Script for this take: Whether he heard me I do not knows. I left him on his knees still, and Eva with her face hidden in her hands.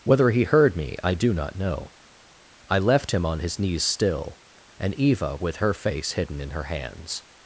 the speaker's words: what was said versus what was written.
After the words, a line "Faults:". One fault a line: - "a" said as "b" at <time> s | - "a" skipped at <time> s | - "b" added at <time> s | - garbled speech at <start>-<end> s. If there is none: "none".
Whether he heard me I do not know. I left him on his knees still, and Eva with her face hidden in her hands.
Faults:
- "knows" said as "know" at 1.6 s